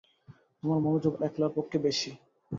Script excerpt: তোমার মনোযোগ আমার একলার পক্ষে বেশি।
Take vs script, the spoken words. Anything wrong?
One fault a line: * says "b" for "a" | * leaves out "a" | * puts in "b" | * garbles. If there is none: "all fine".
* leaves out "আমার"